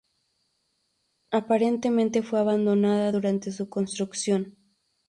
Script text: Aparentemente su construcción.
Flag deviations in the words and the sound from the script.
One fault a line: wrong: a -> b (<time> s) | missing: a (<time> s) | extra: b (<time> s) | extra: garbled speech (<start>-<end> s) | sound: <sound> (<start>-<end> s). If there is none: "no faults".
extra: fue abandonada durante (2.2 s)